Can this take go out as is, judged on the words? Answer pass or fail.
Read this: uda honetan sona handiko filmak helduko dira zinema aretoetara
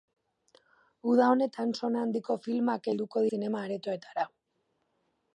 fail